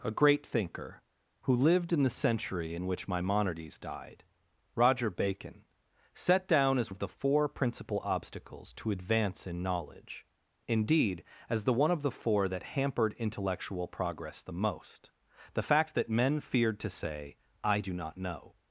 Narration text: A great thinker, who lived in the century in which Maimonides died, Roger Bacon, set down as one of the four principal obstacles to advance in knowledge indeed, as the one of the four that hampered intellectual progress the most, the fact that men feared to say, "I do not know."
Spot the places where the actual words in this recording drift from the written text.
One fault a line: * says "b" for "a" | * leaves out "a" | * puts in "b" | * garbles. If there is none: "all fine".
* leaves out "one"